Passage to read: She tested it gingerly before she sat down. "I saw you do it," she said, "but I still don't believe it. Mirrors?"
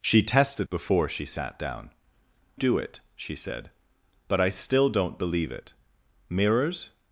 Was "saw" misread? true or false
true